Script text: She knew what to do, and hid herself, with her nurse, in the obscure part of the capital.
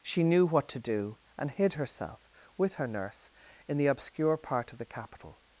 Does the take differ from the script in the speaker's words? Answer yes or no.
no